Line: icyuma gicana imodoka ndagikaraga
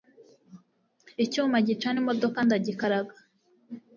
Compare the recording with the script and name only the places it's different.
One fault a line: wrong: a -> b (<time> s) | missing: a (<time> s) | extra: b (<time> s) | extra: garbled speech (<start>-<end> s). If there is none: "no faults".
no faults